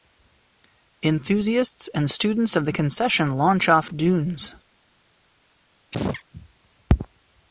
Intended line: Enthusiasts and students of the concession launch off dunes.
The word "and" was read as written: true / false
true